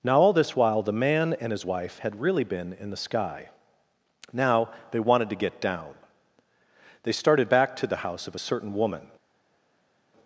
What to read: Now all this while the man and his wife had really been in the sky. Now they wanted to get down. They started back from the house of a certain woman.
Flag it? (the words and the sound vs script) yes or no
yes